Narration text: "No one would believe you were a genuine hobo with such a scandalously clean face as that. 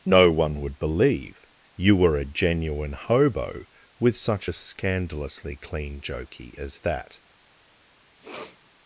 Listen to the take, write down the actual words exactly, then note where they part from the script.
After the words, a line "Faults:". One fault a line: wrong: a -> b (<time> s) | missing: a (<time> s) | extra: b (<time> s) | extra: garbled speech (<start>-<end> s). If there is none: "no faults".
"No one would believe you were a genuine hobo with such a scandalously clean jokey as that.
Faults:
wrong: face -> jokey (6.0 s)